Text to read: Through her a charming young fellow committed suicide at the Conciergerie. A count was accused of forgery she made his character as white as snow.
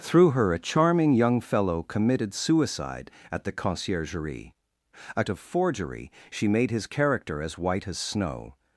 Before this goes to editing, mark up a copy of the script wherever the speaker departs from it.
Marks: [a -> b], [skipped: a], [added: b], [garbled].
Through her a charming young fellow committed suicide at the Conciergerie. A [skipped: count was accused] of forgery she made his character as white as snow.